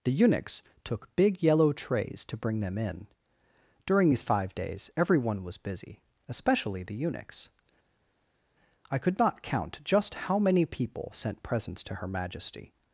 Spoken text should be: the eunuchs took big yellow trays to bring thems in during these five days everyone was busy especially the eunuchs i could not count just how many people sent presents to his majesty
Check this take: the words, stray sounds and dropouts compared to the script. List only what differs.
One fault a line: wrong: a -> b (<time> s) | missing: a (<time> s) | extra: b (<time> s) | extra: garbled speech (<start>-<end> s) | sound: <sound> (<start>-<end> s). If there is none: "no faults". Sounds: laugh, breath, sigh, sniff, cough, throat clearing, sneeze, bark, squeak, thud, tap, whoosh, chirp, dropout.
wrong: thems -> them (2.6 s)
wrong: his -> her (12.0 s)